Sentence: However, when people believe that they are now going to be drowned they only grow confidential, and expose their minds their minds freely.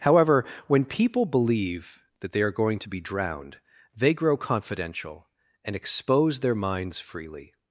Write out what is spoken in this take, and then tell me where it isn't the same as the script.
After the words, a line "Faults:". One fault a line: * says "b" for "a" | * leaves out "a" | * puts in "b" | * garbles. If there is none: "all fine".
However, when people believe that they are going to be drowned they grow confidential, and expose their minds freely.
Faults:
* leaves out "now"
* leaves out "only"
* leaves out "their minds"